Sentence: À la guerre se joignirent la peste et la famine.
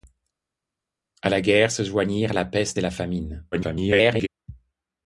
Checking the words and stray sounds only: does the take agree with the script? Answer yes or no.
no